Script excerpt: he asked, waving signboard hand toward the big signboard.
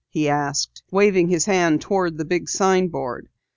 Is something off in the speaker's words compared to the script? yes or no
yes